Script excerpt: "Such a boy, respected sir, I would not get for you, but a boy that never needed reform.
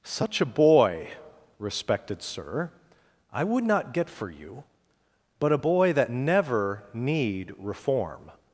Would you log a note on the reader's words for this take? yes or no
yes